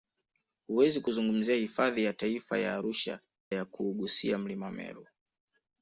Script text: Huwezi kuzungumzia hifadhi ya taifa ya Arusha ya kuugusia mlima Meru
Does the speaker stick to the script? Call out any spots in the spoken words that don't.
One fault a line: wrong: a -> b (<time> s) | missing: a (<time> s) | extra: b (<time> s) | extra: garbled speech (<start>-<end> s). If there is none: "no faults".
no faults